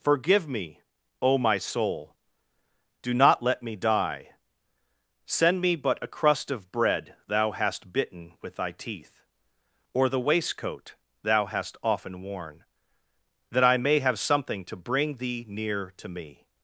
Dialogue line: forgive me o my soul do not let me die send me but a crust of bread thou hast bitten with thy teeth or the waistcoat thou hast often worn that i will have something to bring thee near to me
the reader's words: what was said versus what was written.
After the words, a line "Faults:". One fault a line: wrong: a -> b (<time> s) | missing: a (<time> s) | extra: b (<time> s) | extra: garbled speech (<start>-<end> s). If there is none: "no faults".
forgive me o my soul do not let me die send me but a crust of bread thou hast bitten with thy teeth or the waistcoat thou hast often worn that i may have something to bring thee near to me
Faults:
wrong: will -> may (13.8 s)